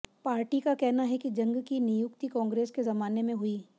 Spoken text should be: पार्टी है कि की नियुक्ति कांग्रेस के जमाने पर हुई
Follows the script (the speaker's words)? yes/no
no